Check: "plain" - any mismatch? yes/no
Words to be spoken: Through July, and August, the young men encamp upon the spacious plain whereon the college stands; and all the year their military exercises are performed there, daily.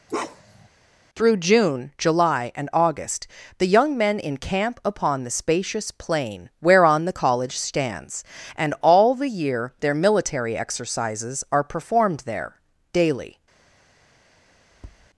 no